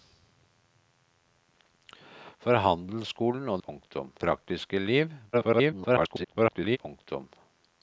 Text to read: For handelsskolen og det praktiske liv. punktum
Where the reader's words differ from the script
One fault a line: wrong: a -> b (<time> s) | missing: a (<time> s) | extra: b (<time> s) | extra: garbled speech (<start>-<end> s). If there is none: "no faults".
wrong: det -> punktum (3.6 s)
extra: garbled speech (5.3-6.8 s)